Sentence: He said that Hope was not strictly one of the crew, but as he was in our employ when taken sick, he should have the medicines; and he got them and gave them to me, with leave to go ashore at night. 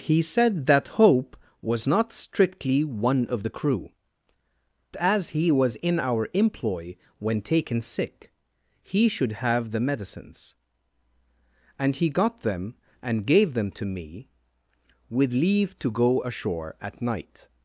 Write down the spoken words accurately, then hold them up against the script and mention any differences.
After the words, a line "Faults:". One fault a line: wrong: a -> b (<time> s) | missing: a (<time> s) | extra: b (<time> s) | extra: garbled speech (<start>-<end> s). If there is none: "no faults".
He said that Hope was not strictly one of the crew, as he was in our employ when taken sick, he should have the medicines; and he got them and gave them to me, with leave to go ashore at night.
Faults:
missing: but (3.9 s)